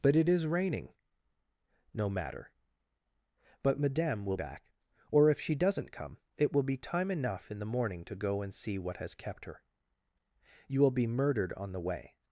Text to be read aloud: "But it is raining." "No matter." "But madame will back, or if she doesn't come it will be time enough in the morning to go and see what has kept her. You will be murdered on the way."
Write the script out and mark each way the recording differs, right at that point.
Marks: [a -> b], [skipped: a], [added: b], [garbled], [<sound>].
"But it is raining." "No matter." "But madame will back, or if she doesn't come it will be time enough in the morning to go and see what has kept her. You will be murdered on the way."